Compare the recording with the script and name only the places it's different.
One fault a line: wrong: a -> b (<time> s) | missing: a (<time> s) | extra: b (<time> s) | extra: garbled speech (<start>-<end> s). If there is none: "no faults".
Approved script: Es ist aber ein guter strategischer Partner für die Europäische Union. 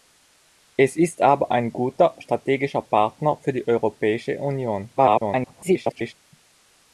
extra: garbled speech (5.0-6.1 s)